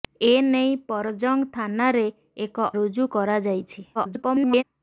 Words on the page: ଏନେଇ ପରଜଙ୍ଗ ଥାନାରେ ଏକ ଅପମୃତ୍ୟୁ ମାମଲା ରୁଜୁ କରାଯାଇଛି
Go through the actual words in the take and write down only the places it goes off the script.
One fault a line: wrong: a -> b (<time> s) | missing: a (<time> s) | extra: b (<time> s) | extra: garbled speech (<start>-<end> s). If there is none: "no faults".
missing: ଅପମୃତ୍ୟୁ ମାମଲା (2.7 s)
extra: garbled speech (3.9-4.6 s)